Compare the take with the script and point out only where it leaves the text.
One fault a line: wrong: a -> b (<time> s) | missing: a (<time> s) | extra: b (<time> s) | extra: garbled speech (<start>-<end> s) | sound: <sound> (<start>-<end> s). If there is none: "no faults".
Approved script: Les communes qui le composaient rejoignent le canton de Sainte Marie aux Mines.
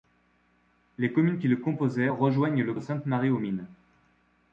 missing: canton (2.7 s)